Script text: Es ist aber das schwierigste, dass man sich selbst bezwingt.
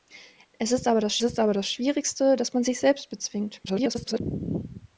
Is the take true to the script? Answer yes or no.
no